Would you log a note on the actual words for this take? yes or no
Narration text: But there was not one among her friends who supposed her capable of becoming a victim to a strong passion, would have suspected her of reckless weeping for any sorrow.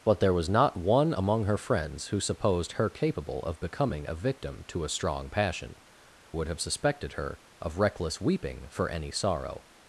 no